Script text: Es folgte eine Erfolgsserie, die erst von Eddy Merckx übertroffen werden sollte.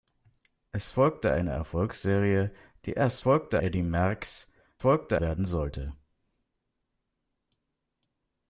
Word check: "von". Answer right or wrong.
wrong